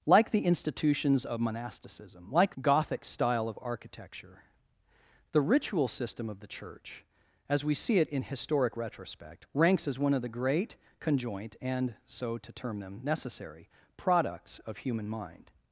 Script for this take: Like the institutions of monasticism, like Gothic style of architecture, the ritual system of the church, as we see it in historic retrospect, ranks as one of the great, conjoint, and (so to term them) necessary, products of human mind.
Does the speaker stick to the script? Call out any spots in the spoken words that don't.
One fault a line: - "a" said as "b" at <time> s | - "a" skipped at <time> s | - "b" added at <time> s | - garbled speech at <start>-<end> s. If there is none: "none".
none